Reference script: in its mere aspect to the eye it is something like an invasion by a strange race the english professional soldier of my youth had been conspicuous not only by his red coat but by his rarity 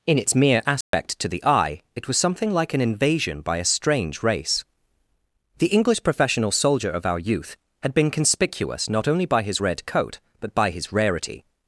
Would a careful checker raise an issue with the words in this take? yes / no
yes